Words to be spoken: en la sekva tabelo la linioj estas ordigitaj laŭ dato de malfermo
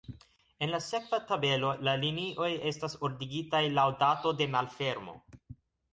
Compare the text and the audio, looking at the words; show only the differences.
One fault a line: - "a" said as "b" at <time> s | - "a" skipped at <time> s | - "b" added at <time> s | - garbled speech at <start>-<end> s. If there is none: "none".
none